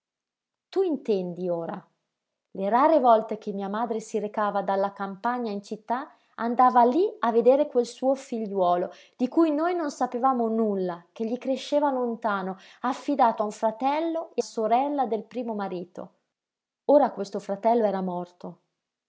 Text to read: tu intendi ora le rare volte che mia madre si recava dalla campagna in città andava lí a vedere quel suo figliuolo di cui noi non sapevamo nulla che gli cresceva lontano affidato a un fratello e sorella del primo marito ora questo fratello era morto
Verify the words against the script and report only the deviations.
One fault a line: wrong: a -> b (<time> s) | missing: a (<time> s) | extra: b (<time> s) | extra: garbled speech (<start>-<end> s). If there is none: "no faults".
no faults